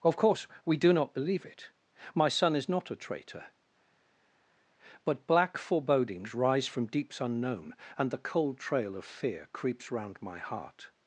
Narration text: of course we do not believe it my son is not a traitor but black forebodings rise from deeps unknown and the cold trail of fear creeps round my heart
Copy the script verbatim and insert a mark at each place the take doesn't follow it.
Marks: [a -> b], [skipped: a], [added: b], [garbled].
of course we do not believe it my son is not a traitor but black forebodings rise from deeps unknown and the cold trail of fear creeps round my heart